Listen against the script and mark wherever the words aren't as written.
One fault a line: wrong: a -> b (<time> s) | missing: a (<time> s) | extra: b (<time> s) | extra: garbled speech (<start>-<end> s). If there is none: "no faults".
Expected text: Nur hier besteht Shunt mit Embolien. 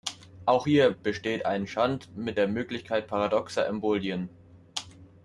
wrong: Nur -> Auch (0.5 s)
extra: ein (1.5 s)
extra: der Möglichkeit paradoxer (2.3 s)